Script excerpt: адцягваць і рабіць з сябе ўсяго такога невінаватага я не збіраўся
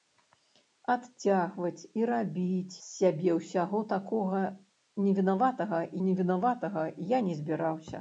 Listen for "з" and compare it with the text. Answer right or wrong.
wrong